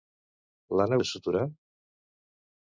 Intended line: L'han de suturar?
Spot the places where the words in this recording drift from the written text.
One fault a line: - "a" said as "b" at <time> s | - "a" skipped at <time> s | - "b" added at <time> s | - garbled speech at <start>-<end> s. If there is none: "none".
none